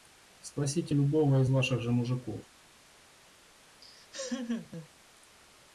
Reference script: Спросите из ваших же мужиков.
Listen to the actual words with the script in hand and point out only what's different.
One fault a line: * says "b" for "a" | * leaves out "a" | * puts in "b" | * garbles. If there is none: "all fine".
* puts in "любого"